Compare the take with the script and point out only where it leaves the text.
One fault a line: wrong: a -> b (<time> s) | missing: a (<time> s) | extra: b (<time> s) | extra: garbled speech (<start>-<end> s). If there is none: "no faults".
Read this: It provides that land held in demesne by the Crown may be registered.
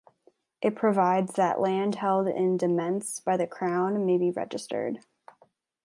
no faults